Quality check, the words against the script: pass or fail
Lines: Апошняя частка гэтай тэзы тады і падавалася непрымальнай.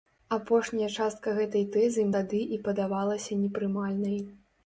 pass